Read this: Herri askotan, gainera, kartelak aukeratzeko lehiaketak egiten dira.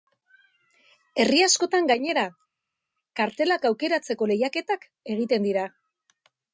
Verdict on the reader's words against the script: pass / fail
pass